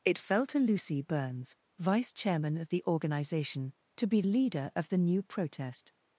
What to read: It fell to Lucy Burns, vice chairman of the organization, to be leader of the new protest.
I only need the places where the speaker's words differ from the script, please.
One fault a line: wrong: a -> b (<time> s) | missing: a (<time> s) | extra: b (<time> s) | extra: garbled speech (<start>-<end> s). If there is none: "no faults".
no faults